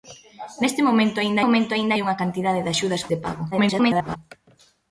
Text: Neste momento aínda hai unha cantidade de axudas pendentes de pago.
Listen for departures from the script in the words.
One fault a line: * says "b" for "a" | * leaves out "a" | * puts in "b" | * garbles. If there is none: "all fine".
* puts in "momento aínda"
* leaves out "pendentes"
* garbles